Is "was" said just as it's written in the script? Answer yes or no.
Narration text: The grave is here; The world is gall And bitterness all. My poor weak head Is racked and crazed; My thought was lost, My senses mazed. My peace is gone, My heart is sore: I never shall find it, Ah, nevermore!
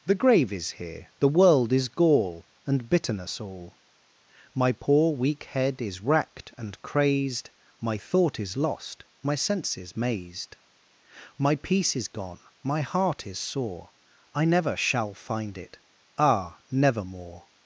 no